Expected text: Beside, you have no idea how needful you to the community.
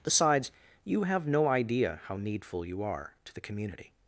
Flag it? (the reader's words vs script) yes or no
yes